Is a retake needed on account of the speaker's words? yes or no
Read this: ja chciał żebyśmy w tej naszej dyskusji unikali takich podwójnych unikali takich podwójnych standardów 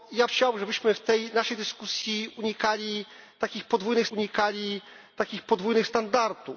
no